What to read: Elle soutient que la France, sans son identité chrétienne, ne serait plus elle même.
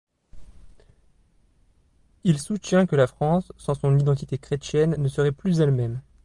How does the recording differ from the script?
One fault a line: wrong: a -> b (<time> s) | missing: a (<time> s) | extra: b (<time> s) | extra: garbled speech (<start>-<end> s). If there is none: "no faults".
wrong: Elle -> Il (2.2 s)